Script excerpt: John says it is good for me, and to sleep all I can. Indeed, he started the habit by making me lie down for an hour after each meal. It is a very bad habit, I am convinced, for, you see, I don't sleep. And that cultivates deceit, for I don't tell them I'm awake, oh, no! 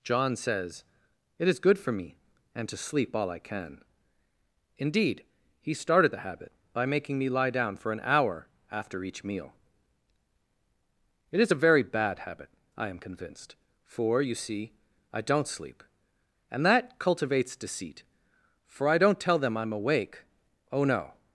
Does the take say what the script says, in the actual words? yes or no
yes